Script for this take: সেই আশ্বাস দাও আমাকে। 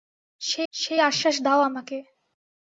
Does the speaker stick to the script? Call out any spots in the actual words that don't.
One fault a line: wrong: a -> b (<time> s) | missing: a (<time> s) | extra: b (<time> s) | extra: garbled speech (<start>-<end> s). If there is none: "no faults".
extra: সেই (0.7 s)